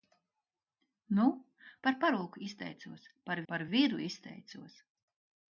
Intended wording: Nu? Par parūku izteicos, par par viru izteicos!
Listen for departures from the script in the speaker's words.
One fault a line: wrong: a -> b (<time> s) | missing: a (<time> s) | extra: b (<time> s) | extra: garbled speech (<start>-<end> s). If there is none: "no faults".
no faults